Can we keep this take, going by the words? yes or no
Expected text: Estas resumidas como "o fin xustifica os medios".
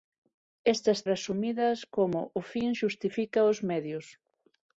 yes